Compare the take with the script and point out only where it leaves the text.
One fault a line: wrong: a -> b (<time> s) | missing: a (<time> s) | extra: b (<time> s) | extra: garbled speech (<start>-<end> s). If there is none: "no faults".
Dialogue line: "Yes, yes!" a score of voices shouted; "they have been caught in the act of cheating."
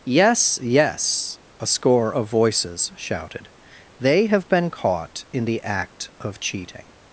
no faults